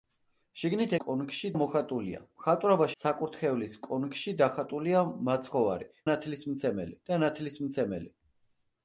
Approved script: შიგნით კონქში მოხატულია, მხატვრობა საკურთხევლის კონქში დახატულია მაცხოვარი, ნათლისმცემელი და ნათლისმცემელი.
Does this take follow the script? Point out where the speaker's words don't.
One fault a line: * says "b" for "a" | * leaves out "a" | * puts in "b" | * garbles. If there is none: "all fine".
all fine